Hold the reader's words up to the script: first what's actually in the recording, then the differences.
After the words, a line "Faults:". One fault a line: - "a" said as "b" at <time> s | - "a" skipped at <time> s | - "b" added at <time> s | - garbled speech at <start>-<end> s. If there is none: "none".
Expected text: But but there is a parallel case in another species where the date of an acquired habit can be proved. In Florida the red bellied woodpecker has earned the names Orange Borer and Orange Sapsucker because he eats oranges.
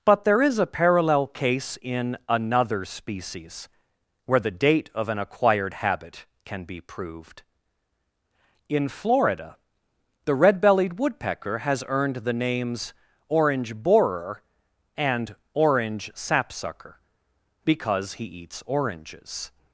But there is a parallel case in another species where the date of an acquired habit can be proved. In Florida the red bellied woodpecker has earned the names Orange Borer and Orange Sapsucker because he eats oranges.
Faults:
- "but" skipped at 0.2 s